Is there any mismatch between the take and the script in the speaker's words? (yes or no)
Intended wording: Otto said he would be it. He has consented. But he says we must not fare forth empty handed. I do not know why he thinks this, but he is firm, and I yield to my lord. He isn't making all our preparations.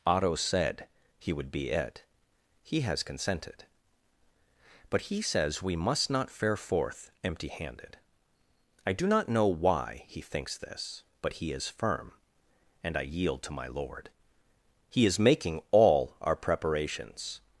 yes